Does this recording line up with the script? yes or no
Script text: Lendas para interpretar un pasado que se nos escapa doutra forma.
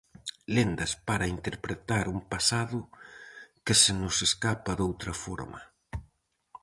yes